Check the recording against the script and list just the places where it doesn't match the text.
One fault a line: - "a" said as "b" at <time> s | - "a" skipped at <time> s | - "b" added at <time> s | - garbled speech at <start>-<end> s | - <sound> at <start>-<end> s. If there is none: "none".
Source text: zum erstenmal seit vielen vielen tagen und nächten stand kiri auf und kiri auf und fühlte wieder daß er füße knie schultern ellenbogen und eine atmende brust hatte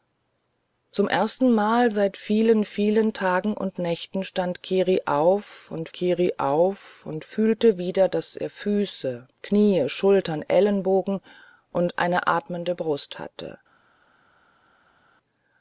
none